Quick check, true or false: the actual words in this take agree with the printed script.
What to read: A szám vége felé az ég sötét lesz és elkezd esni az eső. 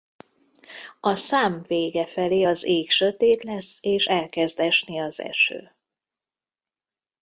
true